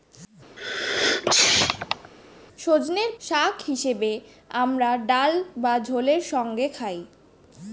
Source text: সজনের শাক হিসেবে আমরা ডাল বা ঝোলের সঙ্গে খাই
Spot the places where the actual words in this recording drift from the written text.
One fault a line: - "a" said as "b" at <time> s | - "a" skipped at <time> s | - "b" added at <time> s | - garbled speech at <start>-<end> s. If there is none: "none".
none